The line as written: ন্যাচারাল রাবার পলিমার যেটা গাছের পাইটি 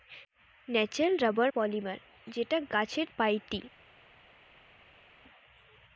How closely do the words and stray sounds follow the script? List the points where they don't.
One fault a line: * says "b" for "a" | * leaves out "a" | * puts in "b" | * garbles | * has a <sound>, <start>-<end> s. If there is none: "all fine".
all fine